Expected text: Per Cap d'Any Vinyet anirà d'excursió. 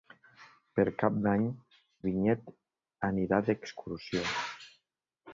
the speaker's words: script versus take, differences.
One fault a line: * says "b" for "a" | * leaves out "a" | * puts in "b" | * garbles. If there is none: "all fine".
all fine